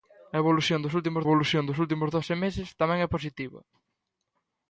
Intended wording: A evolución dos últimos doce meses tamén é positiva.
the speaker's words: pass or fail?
fail